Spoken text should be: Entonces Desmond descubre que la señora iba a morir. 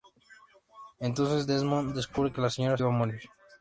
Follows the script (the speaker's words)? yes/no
yes